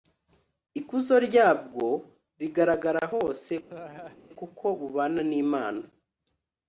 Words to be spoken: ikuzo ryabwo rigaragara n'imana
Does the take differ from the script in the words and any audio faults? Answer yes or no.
yes